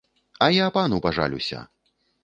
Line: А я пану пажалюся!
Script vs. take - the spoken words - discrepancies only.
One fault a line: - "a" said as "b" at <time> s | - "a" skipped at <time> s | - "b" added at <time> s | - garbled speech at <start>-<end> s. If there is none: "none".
none